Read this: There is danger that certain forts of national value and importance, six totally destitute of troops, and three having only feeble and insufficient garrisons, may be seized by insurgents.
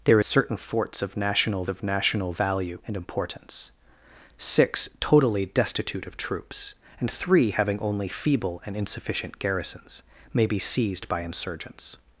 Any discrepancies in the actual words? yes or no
yes